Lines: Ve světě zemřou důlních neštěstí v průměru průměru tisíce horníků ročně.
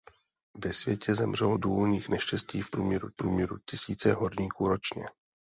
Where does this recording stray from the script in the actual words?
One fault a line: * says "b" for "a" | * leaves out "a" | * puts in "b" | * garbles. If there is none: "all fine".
all fine